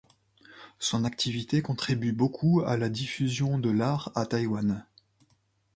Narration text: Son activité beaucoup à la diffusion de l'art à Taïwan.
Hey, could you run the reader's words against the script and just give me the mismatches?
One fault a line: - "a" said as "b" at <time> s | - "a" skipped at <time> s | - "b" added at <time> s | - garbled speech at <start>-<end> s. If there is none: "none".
- "contribue" added at 1.6 s